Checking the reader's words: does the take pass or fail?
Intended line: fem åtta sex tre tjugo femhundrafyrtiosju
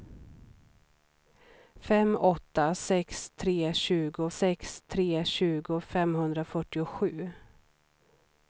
fail